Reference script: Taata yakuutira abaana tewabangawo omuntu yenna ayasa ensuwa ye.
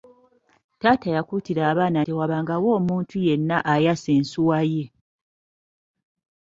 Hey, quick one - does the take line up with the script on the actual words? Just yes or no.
yes